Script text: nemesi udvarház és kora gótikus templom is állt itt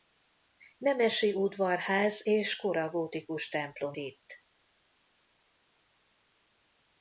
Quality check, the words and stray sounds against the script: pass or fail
fail